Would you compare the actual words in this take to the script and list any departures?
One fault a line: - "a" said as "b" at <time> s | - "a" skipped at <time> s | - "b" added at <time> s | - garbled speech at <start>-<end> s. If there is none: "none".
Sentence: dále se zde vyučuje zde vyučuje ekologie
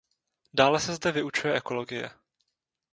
- "zde vyučuje" skipped at 1.6 s